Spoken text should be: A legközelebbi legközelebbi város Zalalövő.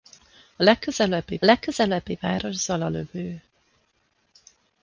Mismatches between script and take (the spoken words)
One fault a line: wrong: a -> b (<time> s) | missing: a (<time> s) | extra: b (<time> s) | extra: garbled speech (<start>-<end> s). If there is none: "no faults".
no faults